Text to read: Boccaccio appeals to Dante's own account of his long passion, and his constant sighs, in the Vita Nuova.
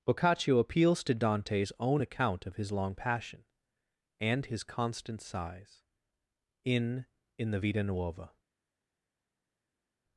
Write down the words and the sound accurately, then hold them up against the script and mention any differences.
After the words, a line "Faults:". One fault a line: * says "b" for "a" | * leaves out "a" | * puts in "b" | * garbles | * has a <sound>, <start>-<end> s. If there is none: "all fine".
Boccaccio appeals to Dante's own account of his long passion, and his constant sighs, in in the Vita Nuova.
Faults:
* puts in "in"